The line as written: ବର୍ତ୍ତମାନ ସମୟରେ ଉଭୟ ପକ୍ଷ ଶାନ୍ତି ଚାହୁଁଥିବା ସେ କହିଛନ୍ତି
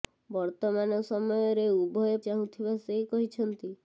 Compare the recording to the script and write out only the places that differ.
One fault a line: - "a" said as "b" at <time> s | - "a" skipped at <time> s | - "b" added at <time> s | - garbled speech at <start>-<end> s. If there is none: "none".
- "ପକ୍ଷ ଶାନ୍ତି" skipped at 2.2 s